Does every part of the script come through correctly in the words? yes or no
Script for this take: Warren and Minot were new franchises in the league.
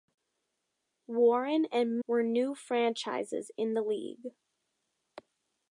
no